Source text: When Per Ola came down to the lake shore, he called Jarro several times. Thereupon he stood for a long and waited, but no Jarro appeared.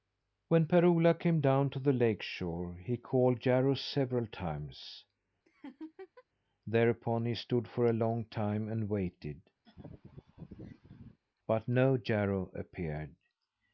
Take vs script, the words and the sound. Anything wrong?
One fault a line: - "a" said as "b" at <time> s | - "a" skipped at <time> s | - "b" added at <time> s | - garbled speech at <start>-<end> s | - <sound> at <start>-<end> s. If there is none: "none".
- laugh at 5.5-6.2 s
- "time" added at 8.2 s
- laugh at 9.6-11.2 s